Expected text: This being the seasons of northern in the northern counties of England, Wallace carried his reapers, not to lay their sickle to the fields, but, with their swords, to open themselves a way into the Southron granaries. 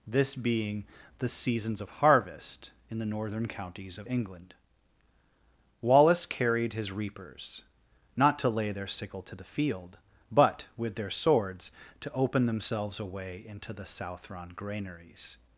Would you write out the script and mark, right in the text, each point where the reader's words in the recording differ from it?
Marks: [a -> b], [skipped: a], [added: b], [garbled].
This being the seasons of [northern -> harvest] in the northern counties of England, Wallace carried his reapers, not to lay their sickle to the [fields, -> field] but, with their swords, to open themselves a way into the Southron granaries.